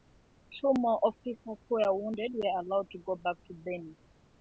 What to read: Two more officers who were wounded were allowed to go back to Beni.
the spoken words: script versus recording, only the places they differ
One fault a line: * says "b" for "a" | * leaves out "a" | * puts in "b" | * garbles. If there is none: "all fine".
all fine